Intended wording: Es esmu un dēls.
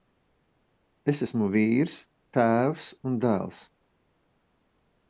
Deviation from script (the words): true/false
true